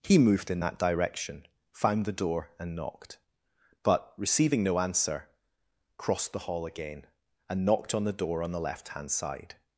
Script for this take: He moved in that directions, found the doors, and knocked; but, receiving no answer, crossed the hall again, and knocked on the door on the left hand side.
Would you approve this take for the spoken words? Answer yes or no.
no